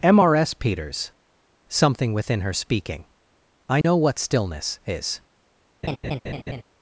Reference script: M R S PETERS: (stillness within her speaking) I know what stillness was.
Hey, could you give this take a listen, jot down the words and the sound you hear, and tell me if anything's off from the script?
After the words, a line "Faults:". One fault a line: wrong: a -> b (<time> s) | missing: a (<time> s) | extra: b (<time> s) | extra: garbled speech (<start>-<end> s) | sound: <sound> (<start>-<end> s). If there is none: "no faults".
M R S PETERS: (something within her speaking) I know what stillness is.
Faults:
wrong: stillness -> something (1.7 s)
sound: dropout (3.8-3.8 s)
wrong: was -> is (4.8 s)
sound: laugh (5.8-6.6 s)